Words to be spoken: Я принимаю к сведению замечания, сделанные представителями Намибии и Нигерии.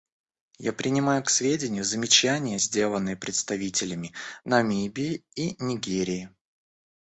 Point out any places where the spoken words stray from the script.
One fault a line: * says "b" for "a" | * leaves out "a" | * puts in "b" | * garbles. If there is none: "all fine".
all fine